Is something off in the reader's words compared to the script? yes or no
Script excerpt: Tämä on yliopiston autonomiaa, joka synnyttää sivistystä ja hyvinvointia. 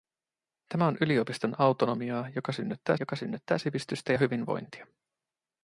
yes